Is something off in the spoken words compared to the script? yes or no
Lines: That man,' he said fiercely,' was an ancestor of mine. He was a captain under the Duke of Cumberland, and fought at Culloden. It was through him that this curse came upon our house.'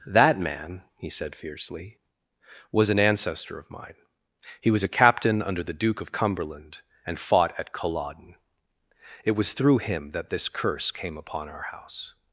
no